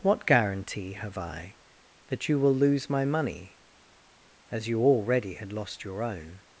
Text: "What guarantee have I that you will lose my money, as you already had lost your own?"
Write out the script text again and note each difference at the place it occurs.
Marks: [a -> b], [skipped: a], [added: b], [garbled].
"What guarantee have I that you will lose my money, as you already had lost your own?"